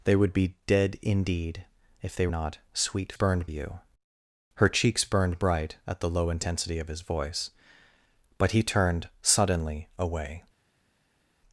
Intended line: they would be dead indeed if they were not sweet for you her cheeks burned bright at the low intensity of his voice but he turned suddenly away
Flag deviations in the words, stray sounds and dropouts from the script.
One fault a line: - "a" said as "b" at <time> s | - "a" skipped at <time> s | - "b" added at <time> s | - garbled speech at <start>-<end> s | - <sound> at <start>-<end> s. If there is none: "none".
- "were" skipped at 2.3 s
- "for" said as "burned" at 3.1 s